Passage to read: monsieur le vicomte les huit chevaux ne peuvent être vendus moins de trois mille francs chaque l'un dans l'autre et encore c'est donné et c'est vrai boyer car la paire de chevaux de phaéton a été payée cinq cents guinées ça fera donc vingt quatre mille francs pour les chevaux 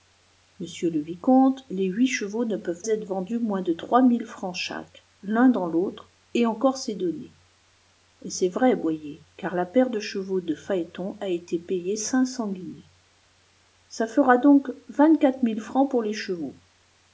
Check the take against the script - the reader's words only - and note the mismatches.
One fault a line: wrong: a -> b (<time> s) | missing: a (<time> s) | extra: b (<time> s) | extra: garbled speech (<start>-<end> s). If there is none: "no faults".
no faults